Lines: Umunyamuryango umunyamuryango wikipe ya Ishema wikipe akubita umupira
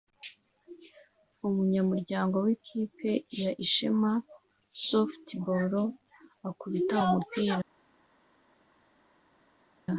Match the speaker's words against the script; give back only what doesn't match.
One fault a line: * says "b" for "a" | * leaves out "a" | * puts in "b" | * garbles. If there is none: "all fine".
* leaves out "umunyamuryango"
* says "softball" for "wikipe"